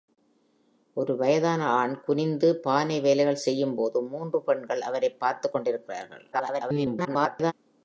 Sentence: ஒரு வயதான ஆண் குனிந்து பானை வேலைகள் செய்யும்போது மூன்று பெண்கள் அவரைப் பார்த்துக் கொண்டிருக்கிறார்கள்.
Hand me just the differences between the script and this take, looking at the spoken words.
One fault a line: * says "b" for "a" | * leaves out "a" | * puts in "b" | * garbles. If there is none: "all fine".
* garbles